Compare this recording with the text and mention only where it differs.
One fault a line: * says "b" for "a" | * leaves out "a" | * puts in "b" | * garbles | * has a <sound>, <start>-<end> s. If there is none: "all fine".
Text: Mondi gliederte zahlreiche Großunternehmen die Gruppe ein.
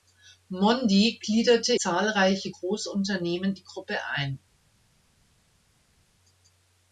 all fine